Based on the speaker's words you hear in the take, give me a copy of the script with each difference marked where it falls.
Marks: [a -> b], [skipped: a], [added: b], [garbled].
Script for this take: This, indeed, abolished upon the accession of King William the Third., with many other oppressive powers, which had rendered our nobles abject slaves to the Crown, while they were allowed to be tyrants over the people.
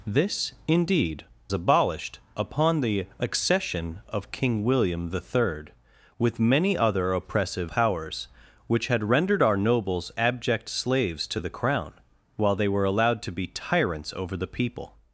This, indeed, abolished upon the accession of King William the Third., with many other oppressive powers, which had rendered our nobles abject slaves to the Crown, while they were allowed to be tyrants over the people.